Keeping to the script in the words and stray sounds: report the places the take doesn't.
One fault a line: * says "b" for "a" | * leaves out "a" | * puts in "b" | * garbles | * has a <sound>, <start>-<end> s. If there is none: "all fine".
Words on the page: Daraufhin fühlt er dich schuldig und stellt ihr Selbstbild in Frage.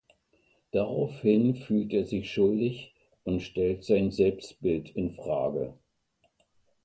* says "sich" for "dich"
* says "sein" for "ihr"